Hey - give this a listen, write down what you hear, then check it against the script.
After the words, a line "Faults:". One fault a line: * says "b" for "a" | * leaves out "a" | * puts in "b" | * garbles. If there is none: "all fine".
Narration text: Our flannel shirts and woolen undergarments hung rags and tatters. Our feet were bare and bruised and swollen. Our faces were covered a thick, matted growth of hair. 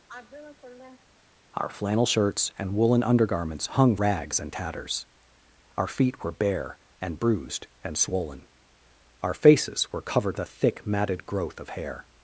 Our flannel shirts and woolen undergarments hung rags and tatters. Our feet were bare and bruised and swollen. Our faces were covered a thick, matted growth of hair.
Faults:
all fine